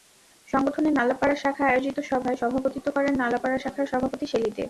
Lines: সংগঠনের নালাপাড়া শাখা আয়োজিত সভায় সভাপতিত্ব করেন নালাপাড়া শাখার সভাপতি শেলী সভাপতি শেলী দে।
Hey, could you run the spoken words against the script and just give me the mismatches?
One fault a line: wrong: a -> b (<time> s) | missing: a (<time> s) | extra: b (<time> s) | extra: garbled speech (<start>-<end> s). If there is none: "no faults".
missing: সভাপতি শেলী (4.5 s)